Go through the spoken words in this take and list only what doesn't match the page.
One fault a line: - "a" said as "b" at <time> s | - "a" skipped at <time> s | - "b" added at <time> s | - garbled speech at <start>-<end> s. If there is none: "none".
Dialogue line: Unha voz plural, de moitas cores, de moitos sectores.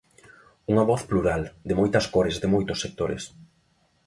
none